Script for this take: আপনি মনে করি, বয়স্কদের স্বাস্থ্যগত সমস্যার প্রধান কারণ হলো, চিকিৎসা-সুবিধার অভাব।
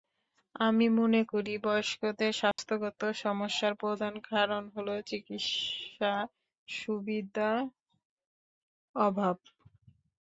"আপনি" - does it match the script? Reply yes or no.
no